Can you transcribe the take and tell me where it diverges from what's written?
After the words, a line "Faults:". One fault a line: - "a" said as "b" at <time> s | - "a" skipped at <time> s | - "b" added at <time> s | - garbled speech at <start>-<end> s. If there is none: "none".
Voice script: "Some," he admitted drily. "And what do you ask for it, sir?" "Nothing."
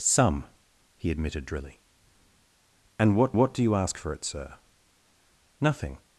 "Some," he admitted drily. "And what what do you ask for it, sir?" "Nothing."
Faults:
- "what" added at 3.3 s